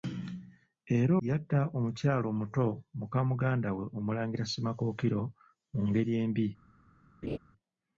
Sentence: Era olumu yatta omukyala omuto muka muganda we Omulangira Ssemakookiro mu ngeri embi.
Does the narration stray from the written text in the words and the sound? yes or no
yes